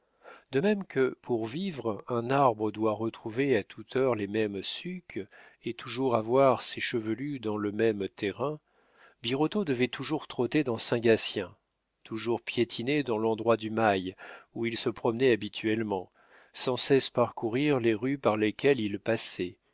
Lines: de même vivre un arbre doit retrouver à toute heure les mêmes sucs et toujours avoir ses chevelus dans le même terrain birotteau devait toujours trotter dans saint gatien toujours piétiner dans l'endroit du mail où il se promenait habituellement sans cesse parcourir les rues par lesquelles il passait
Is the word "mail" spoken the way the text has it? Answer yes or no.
yes